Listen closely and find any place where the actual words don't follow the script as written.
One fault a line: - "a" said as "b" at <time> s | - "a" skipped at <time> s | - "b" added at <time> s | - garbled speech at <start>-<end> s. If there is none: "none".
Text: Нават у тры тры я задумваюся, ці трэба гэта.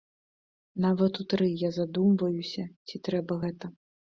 - "тры" skipped at 1.5 s